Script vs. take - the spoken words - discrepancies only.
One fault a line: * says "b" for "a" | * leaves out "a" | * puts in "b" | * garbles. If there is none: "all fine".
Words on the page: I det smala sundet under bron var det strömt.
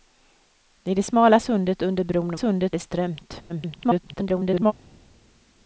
* says "sundet" for "var"
* garbles